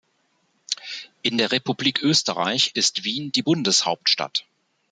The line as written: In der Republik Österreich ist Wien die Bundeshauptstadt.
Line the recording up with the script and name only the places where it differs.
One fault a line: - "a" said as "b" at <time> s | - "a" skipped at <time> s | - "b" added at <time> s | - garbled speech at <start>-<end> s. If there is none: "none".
none